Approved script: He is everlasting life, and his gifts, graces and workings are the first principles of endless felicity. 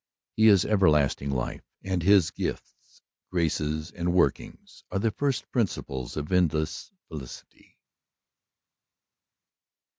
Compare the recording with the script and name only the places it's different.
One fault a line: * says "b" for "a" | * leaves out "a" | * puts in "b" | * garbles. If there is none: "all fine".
all fine